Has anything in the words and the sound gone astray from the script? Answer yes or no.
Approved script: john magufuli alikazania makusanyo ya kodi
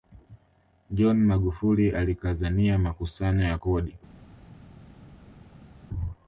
no